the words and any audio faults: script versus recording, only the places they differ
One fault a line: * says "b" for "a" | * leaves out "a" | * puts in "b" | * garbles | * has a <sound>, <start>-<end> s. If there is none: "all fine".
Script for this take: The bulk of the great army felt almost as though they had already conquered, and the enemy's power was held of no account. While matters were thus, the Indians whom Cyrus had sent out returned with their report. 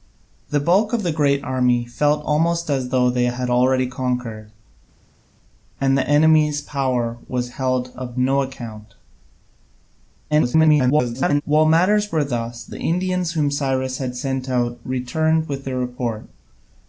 * garbles